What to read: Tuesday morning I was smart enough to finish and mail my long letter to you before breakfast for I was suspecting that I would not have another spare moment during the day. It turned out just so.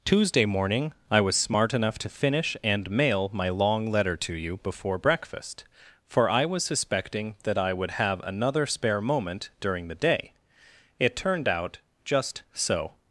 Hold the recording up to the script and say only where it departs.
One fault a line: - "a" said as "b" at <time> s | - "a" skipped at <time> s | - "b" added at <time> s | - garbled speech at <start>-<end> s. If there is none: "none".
- "not" skipped at 7.9 s